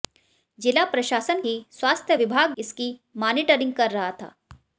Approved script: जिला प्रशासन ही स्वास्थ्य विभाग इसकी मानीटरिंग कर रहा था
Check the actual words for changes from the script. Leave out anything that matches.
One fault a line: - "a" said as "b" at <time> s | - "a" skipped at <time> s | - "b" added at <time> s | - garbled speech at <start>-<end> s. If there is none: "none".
none